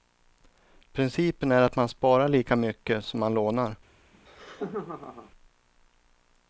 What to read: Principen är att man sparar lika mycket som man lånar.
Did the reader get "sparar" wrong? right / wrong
right